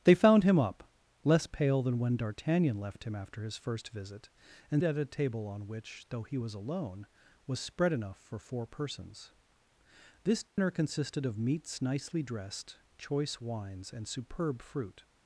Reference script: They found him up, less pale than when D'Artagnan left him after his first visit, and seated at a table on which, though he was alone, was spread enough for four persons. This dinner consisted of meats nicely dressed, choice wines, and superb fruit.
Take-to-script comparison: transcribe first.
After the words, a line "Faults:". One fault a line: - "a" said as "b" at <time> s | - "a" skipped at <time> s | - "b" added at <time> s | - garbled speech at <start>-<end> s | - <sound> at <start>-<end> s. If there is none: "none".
They found him up, less pale than when D'Artagnan left him after his first visit, and at a table on which, though he was alone, was spread enough for four persons. This dinner consisted of meats nicely dressed, choice wines, and superb fruit.
Faults:
- "seated" skipped at 4.8 s
- dropout at 10.5-10.6 s